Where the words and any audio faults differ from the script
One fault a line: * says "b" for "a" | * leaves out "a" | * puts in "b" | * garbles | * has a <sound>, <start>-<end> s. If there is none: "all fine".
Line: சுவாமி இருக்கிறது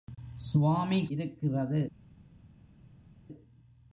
all fine